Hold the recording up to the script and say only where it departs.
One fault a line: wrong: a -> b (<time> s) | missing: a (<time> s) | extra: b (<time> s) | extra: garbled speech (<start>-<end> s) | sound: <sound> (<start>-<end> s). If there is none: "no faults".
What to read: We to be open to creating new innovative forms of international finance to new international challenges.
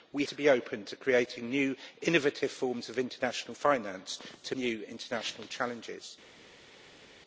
no faults